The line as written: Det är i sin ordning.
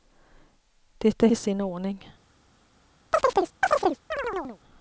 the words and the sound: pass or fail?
fail